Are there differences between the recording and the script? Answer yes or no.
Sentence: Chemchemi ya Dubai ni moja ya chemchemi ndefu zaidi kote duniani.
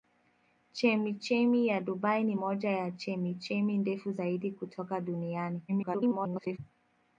yes